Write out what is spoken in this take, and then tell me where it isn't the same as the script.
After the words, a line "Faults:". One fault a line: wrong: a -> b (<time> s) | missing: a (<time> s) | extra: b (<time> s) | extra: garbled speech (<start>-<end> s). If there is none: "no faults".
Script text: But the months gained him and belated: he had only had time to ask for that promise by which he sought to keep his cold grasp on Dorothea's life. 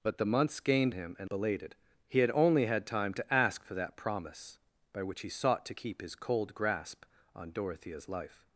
But the months gained him and belated: he had only had time to ask for that promise by which he sought to keep his cold grasp on Dorothea's life.
Faults:
no faults